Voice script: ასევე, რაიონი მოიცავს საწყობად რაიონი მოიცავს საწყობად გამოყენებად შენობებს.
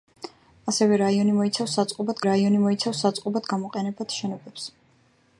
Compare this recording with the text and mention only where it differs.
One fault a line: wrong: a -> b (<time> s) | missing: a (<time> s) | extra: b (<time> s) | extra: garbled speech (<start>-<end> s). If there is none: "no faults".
no faults